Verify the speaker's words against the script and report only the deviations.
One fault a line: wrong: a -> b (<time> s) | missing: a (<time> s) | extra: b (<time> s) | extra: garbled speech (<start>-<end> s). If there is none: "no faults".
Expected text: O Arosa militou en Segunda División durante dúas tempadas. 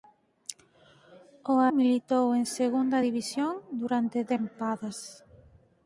missing: Arosa (1.6 s)
missing: dúas (4.2 s)